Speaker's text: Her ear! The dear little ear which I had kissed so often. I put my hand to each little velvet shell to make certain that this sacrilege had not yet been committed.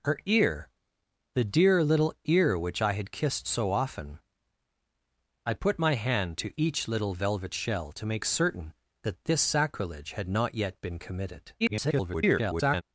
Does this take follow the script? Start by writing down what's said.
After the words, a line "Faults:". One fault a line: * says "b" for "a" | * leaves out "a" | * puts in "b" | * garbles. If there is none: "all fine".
Her ear! The dear little ear which I had kissed so often. I put my hand to each little velvet shell to make certain that this sacrilege had not yet been committed. [garbled]
Faults:
* garbles